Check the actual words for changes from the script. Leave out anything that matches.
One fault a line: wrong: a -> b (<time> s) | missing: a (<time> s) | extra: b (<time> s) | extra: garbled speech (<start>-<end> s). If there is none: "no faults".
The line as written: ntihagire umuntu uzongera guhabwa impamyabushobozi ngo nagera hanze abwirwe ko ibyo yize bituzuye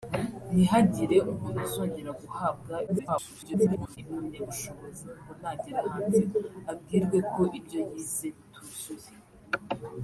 extra: garbled speech (2.9-4.0 s)